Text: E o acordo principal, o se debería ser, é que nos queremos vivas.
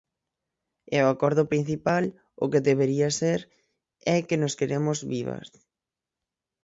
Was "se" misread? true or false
true